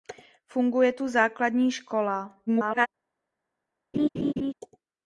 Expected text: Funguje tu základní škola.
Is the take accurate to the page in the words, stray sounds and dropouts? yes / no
no